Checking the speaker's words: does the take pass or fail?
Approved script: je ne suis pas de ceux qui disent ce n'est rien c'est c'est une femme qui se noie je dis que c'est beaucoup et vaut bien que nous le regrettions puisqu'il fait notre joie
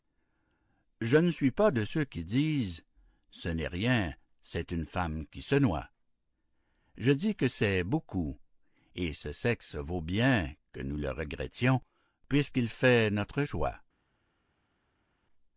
fail